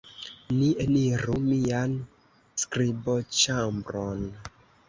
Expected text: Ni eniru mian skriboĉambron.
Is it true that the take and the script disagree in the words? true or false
false